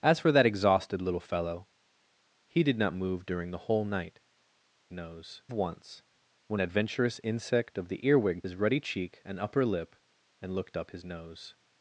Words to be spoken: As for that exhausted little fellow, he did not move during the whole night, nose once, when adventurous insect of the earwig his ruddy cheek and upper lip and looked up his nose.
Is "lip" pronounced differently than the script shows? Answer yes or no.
no